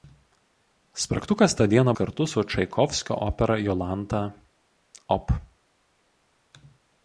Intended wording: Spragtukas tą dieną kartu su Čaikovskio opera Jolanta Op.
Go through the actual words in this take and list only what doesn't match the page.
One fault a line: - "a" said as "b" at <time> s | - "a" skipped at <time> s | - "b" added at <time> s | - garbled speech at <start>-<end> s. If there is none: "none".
none